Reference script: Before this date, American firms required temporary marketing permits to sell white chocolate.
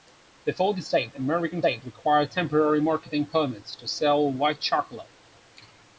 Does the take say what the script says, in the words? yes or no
no